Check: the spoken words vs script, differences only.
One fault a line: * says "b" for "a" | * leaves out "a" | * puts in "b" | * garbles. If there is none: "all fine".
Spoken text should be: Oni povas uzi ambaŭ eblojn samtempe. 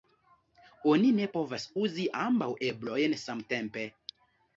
* puts in "ne"